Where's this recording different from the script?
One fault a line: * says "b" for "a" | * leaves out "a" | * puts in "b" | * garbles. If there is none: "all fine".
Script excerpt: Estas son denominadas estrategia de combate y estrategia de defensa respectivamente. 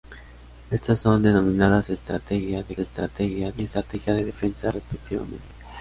* says "estrategia" for "combate"